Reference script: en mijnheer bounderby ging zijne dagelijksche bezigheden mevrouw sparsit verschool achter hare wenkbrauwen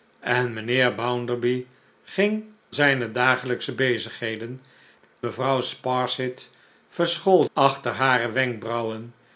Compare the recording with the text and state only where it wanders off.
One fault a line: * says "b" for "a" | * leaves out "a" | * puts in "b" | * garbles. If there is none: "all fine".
all fine